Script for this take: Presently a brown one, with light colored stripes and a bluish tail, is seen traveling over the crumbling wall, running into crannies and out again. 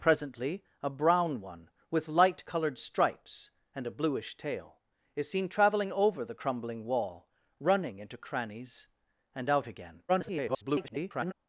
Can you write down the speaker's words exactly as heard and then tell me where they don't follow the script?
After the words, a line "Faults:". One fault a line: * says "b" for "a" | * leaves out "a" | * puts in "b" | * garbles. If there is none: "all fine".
Presently a brown one, with light colored stripes and a bluish tail, is seen traveling over the crumbling wall, running into crannies and out again. [garbled]
Faults:
* garbles